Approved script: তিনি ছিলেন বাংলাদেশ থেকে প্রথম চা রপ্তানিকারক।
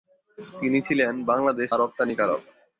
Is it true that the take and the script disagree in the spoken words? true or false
true